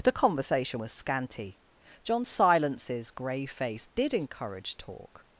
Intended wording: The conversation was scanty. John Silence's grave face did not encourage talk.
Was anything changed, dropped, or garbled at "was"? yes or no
no